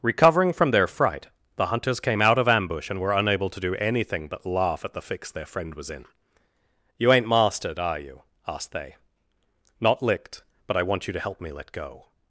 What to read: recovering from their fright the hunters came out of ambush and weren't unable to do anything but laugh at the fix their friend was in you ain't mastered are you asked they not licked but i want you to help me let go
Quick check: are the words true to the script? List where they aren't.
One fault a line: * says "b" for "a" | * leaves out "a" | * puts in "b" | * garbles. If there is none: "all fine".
* says "were" for "weren't"